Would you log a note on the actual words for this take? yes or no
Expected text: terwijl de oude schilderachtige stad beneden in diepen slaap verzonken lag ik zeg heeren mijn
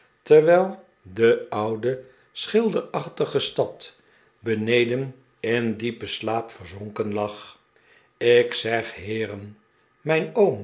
no